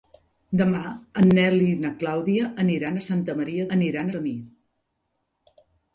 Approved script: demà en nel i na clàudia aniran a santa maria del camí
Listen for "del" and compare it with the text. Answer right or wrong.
wrong